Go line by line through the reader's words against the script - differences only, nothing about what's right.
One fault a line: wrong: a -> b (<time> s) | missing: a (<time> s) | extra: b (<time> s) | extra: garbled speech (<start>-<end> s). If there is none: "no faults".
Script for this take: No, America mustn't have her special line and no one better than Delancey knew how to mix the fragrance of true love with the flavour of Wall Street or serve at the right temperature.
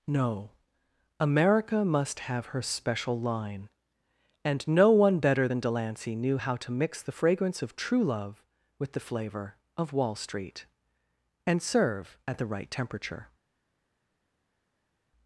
wrong: mustn't -> must (1.9 s)
wrong: or -> and (11.5 s)